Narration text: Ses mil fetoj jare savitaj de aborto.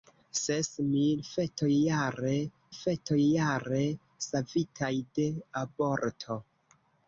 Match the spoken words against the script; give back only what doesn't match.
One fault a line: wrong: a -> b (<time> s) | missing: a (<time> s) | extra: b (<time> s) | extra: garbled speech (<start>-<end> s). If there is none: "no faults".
extra: fetoj jare (2.8 s)